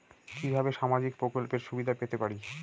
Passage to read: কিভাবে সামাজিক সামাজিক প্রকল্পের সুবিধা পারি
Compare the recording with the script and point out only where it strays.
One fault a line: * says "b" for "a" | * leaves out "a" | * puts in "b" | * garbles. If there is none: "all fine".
* leaves out "সামাজিক"
* puts in "পেতে"